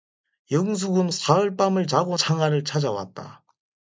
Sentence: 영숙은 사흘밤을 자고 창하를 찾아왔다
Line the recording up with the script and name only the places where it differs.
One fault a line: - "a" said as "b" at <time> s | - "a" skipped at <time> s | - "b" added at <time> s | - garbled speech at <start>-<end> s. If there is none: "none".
none